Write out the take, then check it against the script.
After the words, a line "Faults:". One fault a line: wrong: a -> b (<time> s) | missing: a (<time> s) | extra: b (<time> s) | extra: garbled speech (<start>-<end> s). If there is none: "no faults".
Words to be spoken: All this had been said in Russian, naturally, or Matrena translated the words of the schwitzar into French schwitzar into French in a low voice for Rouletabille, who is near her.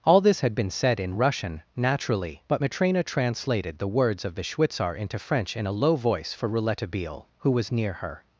All this had been said in Russian, naturally, but Matrena translated the words of the schwitzar into French in a low voice for Rouletabille, who was near her.
Faults:
wrong: or -> but (2.5 s)
missing: schwitzar into French (5.6 s)
wrong: is -> was (7.5 s)